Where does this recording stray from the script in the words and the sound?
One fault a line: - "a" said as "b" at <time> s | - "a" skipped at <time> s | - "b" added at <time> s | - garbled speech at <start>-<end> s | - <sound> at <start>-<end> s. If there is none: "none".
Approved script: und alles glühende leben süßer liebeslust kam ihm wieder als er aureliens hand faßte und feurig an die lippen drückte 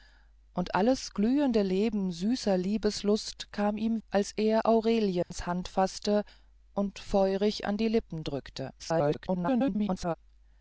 - "wieder" skipped at 4.0 s
- dropout at 5.2-5.3 s
- garbled speech at 8.8-10.1 s